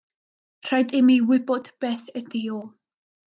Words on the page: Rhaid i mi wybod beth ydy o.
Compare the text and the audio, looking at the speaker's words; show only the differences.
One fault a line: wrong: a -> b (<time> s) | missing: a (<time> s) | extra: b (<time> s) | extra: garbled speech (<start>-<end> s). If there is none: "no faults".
no faults